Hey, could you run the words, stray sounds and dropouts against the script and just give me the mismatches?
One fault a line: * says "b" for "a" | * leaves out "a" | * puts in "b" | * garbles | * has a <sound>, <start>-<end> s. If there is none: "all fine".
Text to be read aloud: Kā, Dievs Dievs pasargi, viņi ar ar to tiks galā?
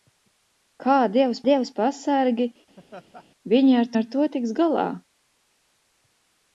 * has a laugh, 2.8-3.2 s